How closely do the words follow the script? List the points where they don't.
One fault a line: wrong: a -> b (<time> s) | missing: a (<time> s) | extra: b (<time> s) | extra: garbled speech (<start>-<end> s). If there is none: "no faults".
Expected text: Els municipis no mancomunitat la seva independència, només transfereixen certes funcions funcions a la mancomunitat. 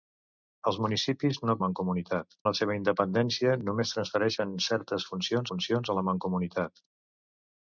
no faults